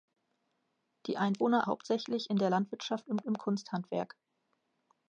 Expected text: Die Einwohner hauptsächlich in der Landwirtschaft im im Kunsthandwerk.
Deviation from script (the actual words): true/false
false